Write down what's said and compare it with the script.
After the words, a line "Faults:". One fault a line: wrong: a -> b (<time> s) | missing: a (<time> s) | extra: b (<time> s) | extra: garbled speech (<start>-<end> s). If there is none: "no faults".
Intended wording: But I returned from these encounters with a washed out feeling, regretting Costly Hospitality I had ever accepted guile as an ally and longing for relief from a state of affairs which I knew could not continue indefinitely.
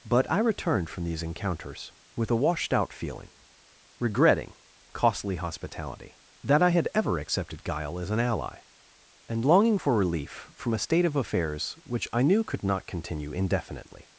But I returned from these encounters with a washed out feeling, regretting Costly Hospitality that I had ever accepted guile as an ally and longing for relief from a state of affairs which I knew could not continue indefinitely.
Faults:
extra: that (6.4 s)